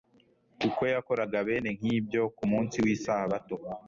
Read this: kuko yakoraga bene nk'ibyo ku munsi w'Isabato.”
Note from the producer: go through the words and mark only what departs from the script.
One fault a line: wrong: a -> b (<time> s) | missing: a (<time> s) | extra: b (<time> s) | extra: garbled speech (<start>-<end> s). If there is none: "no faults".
no faults